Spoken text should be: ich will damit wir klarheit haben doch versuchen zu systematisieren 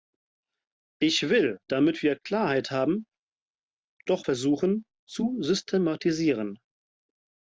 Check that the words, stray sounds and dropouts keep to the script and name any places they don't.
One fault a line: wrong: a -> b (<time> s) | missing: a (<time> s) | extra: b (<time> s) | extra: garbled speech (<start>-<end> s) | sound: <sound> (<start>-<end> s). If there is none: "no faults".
no faults